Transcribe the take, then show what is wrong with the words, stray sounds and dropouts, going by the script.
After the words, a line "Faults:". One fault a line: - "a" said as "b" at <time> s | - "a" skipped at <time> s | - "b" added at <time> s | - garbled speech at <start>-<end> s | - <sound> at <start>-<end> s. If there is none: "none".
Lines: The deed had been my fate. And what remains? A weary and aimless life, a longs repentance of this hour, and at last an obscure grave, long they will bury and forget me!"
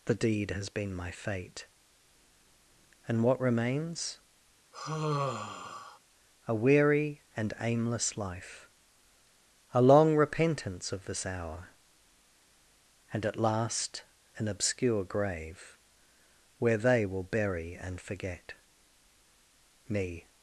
The deed has been my fate. And what remains? A weary and aimless life, a long repentance of this hour, and at last an obscure grave, where they will bury and forget me!"
Faults:
- "had" said as "has" at 0.5 s
- sigh at 4.7-6.0 s
- "longs" said as "long" at 9.8 s
- "long" said as "where" at 16.6 s